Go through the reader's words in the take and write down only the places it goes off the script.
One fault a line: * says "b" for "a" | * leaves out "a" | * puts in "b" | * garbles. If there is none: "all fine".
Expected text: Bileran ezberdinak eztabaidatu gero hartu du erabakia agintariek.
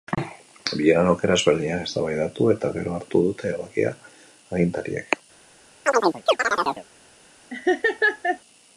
* puts in "aukera"
* puts in "eta"
* says "dute" for "du"